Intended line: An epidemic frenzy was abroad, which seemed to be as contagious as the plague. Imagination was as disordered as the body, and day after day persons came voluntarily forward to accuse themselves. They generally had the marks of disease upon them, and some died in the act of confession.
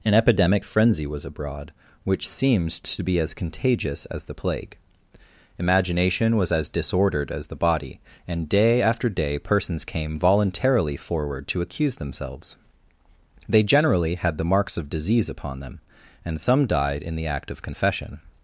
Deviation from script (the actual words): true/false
false